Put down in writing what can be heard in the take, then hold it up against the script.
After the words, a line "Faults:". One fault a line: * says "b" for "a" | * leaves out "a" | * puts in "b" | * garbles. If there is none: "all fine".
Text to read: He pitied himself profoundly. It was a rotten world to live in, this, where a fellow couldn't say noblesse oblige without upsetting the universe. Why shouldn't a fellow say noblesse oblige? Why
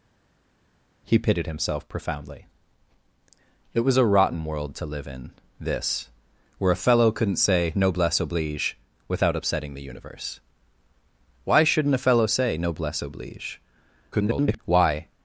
He pitied himself profoundly. It was a rotten world to live in, this, where a fellow couldn't say noblesse oblige without upsetting the universe. Why shouldn't a fellow say noblesse oblige? [garbled] Why
Faults:
* garbles